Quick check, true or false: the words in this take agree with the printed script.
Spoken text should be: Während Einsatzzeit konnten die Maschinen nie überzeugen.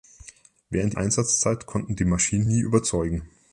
true